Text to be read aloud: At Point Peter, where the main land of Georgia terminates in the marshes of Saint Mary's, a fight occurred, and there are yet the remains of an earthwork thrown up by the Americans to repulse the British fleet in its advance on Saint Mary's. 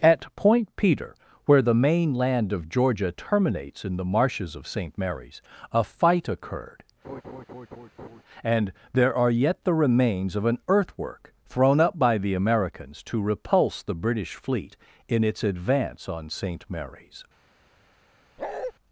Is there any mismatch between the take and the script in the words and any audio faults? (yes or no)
yes